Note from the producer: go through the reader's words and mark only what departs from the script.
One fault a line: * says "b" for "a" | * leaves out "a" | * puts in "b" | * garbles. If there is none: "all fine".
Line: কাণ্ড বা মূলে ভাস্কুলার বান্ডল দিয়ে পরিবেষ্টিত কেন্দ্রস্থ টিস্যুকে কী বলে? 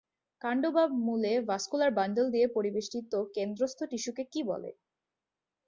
all fine